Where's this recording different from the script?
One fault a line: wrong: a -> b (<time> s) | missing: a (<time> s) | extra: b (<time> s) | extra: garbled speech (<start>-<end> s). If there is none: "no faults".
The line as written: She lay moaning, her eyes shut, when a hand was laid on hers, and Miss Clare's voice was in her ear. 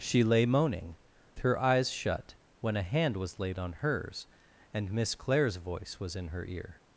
no faults